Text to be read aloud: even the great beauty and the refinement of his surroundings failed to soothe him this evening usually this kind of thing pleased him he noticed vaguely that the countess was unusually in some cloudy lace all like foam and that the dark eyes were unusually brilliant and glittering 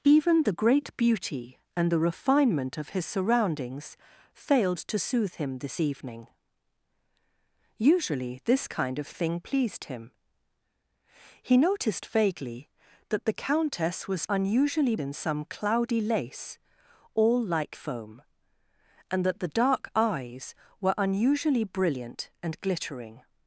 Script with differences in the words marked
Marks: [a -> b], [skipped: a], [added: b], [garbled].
even the great beauty and the refinement of his surroundings failed to soothe him this evening usually this kind of thing pleased him he noticed vaguely that the countess was unusually in some cloudy lace all like foam and that the dark eyes were unusually brilliant and glittering